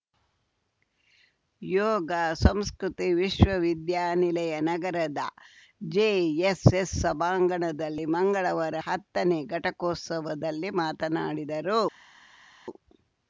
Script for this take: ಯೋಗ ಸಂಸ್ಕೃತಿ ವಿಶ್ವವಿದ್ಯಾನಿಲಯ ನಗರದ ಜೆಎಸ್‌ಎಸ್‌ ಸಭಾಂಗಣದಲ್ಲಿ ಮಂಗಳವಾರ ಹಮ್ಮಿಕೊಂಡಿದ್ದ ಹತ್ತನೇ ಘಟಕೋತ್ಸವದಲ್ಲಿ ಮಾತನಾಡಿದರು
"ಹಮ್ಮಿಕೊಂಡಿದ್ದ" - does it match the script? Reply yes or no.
no